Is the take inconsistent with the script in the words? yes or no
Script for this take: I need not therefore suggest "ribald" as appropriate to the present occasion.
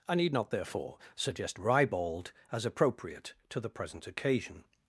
no